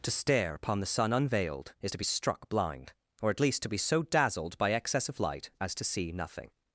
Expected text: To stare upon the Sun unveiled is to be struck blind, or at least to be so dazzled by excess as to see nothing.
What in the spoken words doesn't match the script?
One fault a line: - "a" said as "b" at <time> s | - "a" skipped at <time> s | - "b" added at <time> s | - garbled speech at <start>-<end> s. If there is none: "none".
- "of light" added at 5.1 s